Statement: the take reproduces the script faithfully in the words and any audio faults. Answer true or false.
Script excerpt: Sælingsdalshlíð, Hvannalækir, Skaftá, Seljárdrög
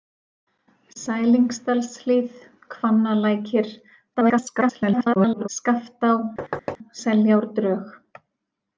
false